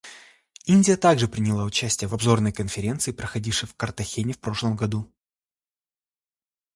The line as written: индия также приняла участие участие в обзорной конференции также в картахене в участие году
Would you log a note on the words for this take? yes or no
yes